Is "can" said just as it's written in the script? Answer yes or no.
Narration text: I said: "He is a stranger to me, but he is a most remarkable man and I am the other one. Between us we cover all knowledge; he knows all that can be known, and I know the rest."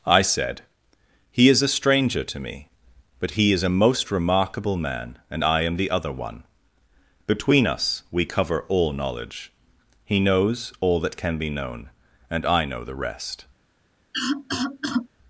yes